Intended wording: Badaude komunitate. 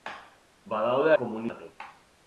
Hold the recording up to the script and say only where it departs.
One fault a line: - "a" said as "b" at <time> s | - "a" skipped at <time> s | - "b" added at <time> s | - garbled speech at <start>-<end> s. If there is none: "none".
none